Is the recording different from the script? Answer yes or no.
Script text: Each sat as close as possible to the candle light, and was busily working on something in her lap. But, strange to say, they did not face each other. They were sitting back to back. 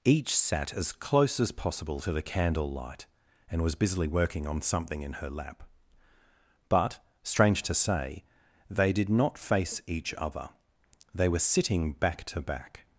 no